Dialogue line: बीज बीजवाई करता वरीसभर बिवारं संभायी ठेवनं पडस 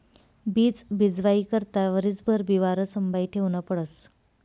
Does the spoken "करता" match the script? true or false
true